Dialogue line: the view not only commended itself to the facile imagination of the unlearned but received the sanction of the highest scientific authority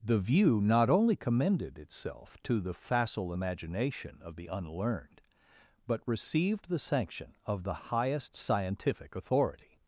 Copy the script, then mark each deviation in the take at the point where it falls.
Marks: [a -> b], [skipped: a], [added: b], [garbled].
the view not only commended itself to the facile imagination of the unlearned but received the sanction of the highest scientific authority